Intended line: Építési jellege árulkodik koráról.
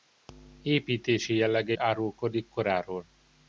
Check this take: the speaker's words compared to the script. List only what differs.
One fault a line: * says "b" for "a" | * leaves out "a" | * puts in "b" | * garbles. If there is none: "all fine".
all fine